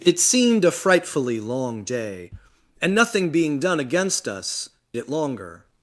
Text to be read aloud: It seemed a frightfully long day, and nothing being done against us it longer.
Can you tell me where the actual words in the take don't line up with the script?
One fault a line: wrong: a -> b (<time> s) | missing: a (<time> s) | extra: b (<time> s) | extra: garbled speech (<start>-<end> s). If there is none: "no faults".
no faults